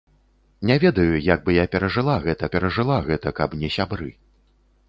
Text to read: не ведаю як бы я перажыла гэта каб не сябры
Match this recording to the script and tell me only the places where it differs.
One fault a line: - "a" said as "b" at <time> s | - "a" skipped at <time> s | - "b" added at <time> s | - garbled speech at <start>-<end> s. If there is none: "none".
- "перажыла гэта" added at 2.6 s